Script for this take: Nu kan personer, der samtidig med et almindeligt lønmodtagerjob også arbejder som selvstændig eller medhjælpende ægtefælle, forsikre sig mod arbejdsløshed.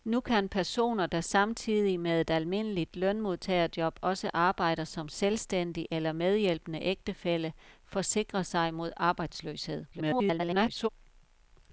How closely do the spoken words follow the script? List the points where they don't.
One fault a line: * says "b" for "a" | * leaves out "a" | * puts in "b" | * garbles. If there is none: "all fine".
* garbles